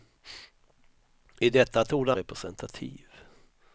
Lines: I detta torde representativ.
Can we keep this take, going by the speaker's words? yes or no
yes